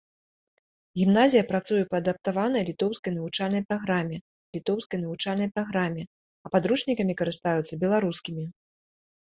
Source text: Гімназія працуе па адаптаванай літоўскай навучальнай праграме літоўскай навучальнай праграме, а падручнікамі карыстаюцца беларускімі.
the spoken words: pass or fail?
pass